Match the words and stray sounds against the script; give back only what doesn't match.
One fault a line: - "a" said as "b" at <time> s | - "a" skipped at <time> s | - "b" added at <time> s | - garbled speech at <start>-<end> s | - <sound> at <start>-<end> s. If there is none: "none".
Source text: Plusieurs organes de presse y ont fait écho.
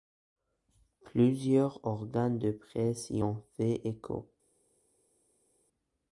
none